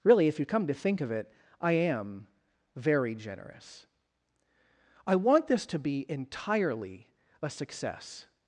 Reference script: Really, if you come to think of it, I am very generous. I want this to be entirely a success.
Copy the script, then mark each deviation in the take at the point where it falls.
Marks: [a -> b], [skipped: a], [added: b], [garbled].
Really, if you come to think of it, I am very generous. I want this to be entirely a success.